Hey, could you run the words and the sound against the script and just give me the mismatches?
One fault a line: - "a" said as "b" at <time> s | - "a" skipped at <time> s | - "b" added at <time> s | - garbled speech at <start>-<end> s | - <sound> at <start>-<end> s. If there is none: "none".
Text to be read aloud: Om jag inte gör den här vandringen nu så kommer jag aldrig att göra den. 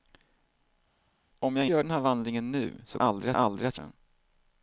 - "inte" skipped at 1.7 s
- "kommer" said as "aldrig" at 3.0 s
- "göra" skipped at 3.8 s